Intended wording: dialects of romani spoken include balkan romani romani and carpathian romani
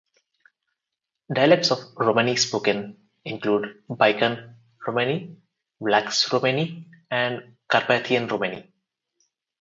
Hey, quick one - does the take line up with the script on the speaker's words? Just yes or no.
no